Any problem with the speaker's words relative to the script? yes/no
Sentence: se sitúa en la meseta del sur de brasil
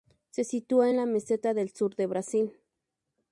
no